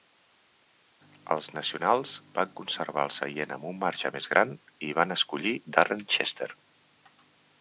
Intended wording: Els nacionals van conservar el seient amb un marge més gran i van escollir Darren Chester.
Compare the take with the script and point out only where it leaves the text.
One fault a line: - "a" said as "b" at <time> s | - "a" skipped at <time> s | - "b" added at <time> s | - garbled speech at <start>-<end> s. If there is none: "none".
none